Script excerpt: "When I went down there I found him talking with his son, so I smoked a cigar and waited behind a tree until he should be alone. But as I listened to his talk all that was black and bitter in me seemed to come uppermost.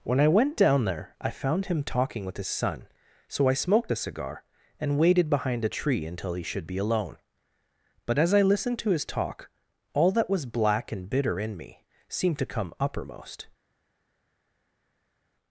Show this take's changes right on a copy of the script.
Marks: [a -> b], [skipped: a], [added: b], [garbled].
"When I went down there I found him talking with his son, so I smoked a cigar and waited behind a tree until he should be alone. But as I listened to his talk all that was black and bitter in me seemed to come uppermost.